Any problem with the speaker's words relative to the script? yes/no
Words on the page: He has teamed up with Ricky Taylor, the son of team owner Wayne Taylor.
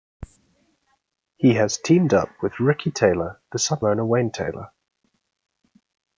yes